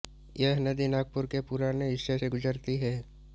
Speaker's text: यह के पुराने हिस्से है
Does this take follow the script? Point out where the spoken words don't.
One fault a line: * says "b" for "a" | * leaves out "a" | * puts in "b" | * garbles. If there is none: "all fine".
* puts in "नदी नागपुर"
* puts in "से गुजरती"